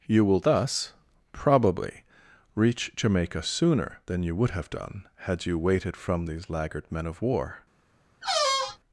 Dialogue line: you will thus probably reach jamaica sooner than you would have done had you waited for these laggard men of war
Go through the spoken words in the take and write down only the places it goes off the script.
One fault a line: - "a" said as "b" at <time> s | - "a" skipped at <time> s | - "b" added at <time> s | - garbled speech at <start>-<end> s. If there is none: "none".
- "for" said as "from" at 6.0 s